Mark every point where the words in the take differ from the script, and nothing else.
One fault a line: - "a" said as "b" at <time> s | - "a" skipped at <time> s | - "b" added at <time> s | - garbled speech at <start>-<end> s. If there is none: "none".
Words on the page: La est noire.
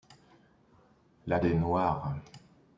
none